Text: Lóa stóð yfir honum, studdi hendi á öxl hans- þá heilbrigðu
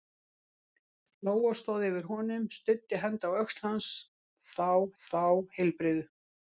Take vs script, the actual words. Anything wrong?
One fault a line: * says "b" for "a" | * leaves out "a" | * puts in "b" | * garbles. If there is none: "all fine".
* puts in "þá"